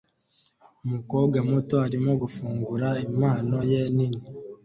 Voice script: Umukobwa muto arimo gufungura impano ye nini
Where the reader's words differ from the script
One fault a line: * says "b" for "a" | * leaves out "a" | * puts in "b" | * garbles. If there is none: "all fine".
all fine